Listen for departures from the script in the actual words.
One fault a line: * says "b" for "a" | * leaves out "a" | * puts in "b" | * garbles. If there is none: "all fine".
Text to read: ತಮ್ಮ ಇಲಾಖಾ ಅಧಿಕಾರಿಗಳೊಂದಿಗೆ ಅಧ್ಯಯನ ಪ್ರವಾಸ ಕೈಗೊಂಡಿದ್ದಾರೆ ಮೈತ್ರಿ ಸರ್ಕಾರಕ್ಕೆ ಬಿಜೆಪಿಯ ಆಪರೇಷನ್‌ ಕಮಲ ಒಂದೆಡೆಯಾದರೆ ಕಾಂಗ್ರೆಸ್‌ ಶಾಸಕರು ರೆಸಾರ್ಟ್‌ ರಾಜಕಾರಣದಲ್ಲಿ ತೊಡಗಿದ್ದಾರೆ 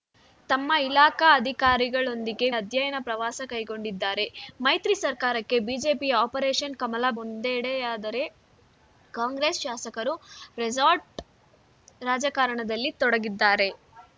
all fine